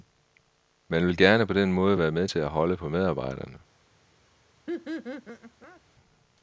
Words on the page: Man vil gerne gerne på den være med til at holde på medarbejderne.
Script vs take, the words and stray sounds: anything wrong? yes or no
yes